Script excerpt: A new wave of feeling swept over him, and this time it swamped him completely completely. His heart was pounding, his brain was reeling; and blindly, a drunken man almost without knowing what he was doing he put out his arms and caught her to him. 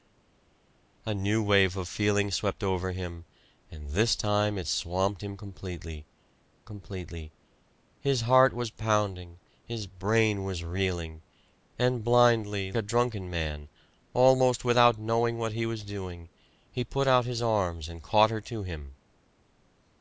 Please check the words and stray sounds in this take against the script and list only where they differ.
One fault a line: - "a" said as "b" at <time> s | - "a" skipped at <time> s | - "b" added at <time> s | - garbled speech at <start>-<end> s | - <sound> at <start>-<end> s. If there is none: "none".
none